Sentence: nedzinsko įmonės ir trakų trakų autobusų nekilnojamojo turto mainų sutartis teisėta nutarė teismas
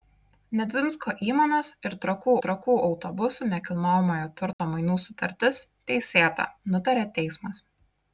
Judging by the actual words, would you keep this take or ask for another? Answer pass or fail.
pass